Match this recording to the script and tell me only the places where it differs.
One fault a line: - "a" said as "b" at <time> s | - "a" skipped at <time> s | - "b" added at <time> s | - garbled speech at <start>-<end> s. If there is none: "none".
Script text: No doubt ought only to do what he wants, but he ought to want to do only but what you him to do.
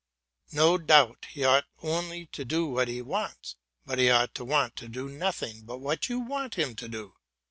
- "he" added at 1.3 s
- "only" said as "nothing" at 5.1 s
- "want" added at 6.2 s